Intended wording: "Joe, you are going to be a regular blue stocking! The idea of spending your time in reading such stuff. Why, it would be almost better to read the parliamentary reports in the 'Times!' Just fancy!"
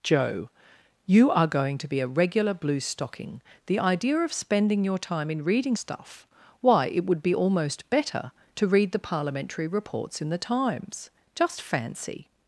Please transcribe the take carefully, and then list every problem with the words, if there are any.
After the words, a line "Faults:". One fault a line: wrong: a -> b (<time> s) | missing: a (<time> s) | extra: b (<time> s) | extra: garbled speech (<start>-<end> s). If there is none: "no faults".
"Joe, you are going to be a regular blue stocking! The idea of spending your time in reading stuff. Why, it would be almost better to read the parliamentary reports in the 'Times!' Just fancy!"
Faults:
missing: such (5.8 s)